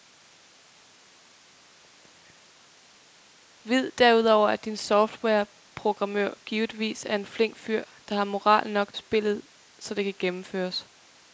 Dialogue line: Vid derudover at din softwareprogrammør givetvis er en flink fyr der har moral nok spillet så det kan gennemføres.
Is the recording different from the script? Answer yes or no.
no